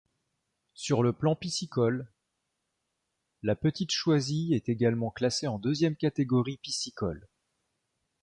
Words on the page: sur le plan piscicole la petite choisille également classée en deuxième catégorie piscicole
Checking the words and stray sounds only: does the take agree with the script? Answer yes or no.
no